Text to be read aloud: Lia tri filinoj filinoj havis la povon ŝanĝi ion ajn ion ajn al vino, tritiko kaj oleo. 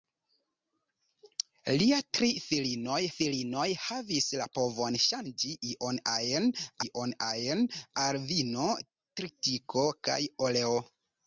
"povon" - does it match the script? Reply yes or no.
yes